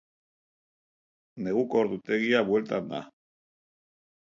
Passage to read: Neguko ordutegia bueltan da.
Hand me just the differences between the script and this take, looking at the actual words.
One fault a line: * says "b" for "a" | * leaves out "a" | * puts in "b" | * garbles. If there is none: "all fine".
all fine